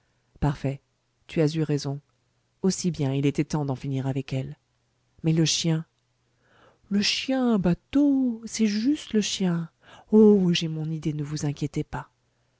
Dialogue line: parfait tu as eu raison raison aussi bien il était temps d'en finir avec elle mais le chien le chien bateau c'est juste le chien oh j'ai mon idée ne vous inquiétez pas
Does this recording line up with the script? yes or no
no